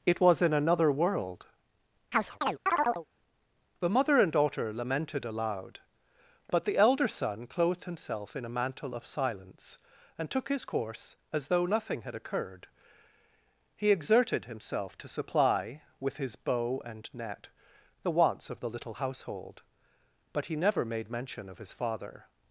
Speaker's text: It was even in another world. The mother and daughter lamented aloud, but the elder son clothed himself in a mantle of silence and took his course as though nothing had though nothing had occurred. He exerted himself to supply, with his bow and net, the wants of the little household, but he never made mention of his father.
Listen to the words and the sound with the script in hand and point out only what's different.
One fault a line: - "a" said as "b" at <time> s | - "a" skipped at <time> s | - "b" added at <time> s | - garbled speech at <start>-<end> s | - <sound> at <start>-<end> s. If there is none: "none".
- "even" skipped at 0.4 s
- chirp at 2.1-3.1 s
- "though nothing had" skipped at 12.2 s